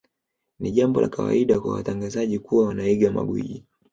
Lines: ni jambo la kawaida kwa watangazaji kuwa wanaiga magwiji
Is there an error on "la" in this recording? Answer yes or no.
no